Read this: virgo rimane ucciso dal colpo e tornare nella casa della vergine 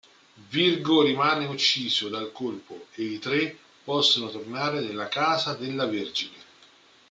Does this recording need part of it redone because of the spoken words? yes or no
yes